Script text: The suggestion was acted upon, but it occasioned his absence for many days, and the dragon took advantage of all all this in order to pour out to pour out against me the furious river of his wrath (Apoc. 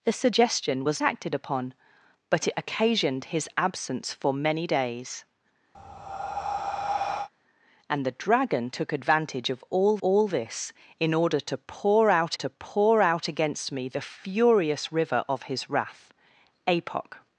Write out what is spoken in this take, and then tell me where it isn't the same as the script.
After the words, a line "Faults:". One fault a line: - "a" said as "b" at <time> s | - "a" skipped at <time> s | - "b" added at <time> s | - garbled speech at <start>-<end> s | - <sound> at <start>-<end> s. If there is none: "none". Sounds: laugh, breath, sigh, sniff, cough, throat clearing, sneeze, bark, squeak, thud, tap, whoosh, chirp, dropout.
The suggestion was acted upon, but it occasioned his absence for many days, and the dragon took advantage of all all this in order to pour out to pour out against me the furious river of his wrath (Apoc.
Faults:
- breath at 5.7-7.3 s